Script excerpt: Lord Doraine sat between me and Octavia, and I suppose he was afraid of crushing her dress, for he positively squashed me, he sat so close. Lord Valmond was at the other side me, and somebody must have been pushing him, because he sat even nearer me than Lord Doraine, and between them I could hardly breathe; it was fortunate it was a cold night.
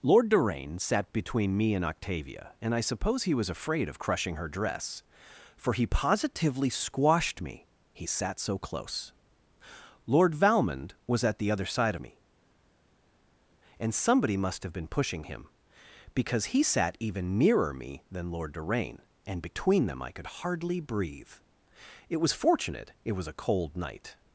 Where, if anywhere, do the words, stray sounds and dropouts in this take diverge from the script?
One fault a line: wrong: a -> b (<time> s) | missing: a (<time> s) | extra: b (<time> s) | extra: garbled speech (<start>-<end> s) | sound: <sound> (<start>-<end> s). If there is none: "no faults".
no faults